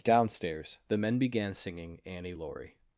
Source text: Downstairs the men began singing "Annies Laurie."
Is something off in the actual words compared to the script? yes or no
yes